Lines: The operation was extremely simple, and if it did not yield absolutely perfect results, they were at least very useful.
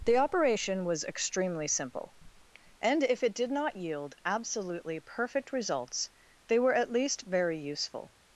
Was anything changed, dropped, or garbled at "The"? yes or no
no